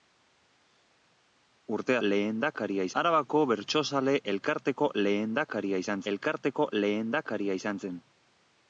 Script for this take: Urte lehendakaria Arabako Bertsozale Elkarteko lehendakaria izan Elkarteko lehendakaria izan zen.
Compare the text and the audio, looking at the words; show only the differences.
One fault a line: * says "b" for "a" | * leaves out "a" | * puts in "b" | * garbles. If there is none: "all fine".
all fine